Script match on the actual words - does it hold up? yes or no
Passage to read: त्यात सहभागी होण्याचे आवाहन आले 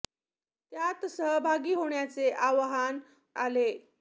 yes